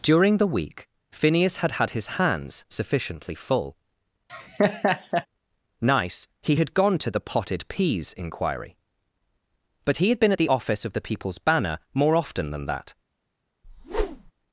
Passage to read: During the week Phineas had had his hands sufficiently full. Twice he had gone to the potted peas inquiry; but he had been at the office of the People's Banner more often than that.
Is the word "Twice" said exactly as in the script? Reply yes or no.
no